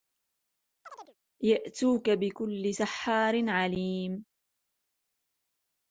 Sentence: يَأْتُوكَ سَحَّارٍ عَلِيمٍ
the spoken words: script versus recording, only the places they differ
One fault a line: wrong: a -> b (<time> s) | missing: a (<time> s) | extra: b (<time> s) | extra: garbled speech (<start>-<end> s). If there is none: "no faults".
extra: بِكُلِّ (2.1 s)